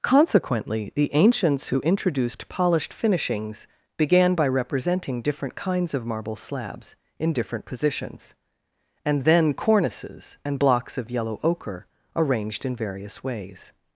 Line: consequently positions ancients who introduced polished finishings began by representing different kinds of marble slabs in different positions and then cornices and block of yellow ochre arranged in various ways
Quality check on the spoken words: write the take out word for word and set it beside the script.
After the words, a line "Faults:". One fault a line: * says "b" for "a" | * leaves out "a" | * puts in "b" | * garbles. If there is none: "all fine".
consequently the ancients who introduced polished finishings began by representing different kinds of marble slabs in different positions and then cornices and blocks of yellow ochre arranged in various ways
Faults:
* says "the" for "positions"
* says "blocks" for "block"